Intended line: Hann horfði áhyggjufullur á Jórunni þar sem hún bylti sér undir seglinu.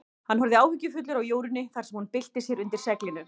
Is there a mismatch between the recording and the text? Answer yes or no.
no